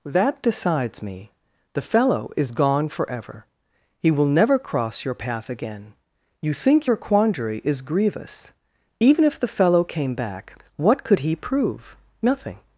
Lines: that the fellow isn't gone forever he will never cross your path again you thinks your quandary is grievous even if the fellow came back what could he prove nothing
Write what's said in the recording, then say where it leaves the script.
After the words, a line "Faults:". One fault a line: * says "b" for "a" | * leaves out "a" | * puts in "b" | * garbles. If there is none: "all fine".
that decides me the fellow is gone forever he will never cross your path again you think your quandary is grievous even if the fellow came back what could he prove nothing
Faults:
* puts in "decides me"
* says "is" for "isn't"
* says "think" for "thinks"